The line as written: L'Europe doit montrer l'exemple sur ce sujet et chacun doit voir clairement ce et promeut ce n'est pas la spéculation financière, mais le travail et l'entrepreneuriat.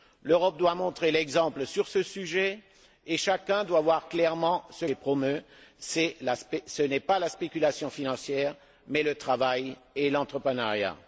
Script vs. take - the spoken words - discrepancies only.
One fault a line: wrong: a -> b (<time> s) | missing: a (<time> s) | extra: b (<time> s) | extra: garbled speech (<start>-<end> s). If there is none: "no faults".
no faults